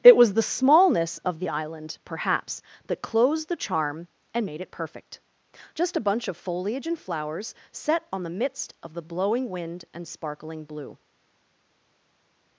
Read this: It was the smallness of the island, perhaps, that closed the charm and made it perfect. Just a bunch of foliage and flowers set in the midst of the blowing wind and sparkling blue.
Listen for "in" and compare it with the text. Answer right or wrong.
wrong